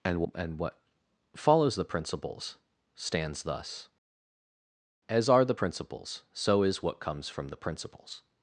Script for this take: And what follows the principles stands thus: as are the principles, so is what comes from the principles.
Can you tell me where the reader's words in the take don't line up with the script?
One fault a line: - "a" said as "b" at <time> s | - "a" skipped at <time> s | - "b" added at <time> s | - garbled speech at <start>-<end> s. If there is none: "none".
- "and" added at 0.3 s